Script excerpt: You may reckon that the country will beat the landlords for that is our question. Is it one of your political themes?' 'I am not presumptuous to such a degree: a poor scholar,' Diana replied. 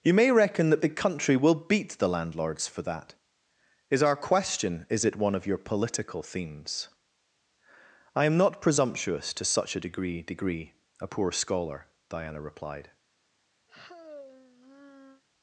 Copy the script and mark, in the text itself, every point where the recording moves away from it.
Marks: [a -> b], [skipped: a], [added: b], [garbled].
You may reckon that the country will beat the landlords for that is our question. Is it one of your political themes?' 'I am not presumptuous to such a degree: [added: degree] a poor scholar,' Diana replied.